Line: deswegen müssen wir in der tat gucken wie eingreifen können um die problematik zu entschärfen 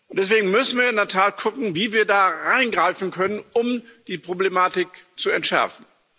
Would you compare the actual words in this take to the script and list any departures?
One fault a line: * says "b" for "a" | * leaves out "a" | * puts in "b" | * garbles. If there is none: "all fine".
* puts in "wir da"